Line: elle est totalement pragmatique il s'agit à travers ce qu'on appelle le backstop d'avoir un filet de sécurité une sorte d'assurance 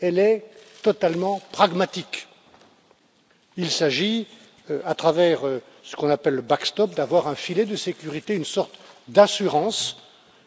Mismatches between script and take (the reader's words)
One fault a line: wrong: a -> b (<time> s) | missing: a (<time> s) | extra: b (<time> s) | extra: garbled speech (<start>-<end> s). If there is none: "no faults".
no faults